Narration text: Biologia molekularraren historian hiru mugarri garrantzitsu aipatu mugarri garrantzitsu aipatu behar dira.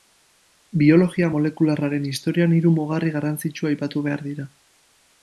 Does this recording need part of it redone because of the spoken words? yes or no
yes